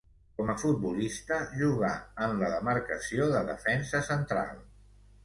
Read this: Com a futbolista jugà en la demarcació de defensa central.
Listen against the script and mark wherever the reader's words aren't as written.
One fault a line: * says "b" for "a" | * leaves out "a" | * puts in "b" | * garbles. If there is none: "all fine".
all fine